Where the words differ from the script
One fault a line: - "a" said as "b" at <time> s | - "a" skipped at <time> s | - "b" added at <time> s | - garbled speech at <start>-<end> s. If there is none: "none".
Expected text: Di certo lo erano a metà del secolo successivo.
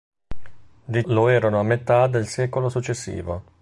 - "certo" skipped at 1.1 s